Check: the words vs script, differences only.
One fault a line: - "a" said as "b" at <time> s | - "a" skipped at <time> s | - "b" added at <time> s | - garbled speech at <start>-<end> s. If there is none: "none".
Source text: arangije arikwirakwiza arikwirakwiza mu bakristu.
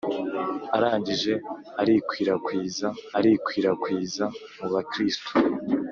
none